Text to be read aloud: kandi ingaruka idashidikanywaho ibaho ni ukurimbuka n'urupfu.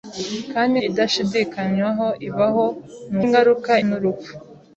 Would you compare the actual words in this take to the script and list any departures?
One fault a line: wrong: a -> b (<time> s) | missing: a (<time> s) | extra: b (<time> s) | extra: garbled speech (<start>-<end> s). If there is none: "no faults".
missing: ingaruka (0.7 s)
wrong: ukurimbuka -> ingaruka (3.2 s)